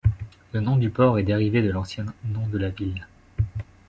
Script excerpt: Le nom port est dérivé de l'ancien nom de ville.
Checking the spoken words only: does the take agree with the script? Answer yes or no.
no